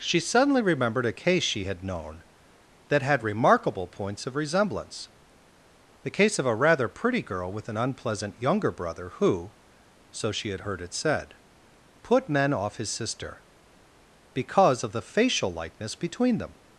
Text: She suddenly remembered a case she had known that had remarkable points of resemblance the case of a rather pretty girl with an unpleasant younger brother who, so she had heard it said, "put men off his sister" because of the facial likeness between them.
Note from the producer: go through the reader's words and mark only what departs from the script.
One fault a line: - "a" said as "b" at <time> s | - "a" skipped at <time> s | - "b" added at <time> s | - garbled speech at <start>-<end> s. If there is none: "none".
none